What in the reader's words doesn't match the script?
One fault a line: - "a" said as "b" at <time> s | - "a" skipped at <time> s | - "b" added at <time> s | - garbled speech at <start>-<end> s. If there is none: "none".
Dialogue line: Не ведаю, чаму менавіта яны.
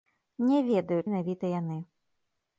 - "чаму" skipped at 1.0 s